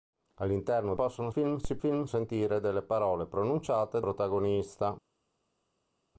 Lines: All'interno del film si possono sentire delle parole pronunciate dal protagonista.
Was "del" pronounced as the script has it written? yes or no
no